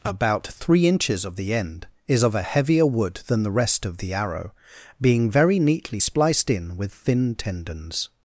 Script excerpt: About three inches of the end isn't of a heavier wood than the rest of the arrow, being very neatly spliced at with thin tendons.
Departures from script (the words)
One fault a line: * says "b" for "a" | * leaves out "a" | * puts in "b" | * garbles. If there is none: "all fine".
* says "is" for "isn't"
* says "in" for "at"